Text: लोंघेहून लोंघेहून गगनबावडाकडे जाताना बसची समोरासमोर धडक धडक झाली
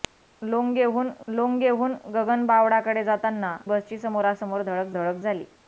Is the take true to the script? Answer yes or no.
yes